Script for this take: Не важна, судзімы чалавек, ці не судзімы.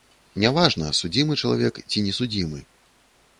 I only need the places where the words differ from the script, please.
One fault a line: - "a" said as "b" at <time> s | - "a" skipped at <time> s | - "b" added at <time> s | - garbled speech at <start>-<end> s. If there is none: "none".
none